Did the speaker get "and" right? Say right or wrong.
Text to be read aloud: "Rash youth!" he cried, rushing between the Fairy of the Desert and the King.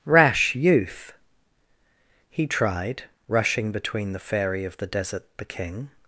wrong